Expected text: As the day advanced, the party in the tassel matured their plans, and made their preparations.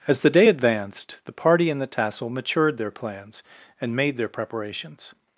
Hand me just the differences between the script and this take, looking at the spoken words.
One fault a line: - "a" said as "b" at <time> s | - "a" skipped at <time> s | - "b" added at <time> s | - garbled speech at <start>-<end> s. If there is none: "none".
none